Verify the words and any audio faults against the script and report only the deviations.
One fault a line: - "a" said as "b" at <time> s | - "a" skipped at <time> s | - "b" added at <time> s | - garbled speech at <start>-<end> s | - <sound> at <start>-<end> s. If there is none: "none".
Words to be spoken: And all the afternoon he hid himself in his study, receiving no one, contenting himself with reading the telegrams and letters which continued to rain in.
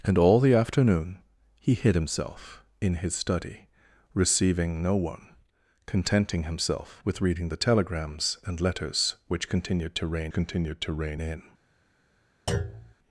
- "continued to rain" added at 10.3 s
- thud at 12.5-12.9 s